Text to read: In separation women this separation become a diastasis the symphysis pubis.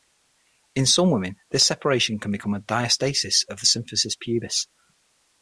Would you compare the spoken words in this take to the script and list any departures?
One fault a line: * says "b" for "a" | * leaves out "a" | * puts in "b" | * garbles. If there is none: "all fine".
* says "some" for "separation"
* puts in "can"
* puts in "of"